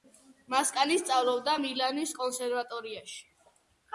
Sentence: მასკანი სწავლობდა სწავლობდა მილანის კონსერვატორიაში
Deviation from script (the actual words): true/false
true